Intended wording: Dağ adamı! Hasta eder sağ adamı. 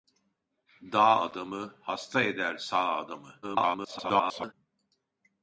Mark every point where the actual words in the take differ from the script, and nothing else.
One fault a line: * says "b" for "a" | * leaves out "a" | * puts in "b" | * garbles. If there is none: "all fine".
* garbles